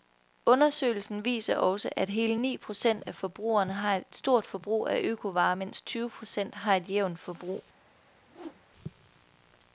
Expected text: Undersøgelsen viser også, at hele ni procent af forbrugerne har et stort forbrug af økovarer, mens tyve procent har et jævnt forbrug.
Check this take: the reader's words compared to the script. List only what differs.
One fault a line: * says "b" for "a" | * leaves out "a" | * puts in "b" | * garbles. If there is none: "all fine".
all fine